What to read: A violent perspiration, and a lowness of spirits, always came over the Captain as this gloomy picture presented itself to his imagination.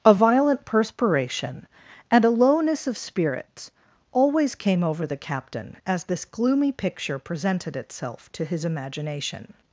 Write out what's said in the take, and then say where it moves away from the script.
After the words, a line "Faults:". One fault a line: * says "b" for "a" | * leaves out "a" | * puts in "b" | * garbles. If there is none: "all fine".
A violent perspiration, and a lowness of spirits, always came over the Captain as this gloomy picture presented itself to his imagination.
Faults:
all fine